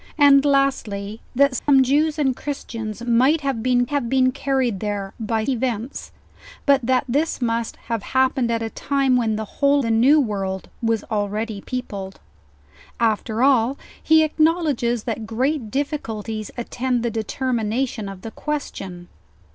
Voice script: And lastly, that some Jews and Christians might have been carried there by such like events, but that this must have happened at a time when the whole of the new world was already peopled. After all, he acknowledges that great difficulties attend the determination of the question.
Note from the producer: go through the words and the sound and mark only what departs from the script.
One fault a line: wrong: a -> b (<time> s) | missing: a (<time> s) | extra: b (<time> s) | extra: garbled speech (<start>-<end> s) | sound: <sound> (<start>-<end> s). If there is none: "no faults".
sound: dropout (1.6-1.7 s)
extra: have been (3.9 s)
missing: such like (5.4 s)
missing: of (9.8 s)